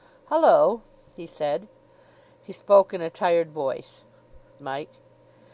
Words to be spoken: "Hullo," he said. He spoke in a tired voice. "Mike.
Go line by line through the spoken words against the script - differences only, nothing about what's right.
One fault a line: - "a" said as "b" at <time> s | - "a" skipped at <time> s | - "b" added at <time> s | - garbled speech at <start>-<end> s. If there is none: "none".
none